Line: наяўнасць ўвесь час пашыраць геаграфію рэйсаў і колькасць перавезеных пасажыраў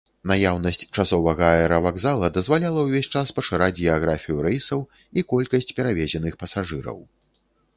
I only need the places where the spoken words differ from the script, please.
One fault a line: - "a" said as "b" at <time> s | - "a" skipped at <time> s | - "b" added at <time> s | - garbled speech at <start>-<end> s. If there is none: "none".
- "часовага аэравакзала дазваляла" added at 1.0 s